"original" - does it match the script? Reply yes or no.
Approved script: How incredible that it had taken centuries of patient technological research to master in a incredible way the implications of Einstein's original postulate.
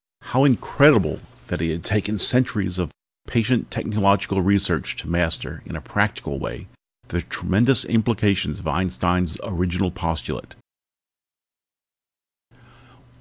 yes